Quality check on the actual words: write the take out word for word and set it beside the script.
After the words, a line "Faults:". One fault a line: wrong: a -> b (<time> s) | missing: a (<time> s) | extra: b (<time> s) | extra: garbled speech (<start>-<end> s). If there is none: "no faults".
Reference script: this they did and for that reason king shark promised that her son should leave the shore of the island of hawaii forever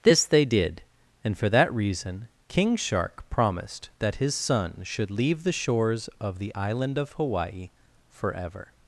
this they did and for that reason king shark promised that his son should leave the shores of the island of hawaii forever
Faults:
wrong: her -> his (4.2 s)
wrong: shore -> shores (5.5 s)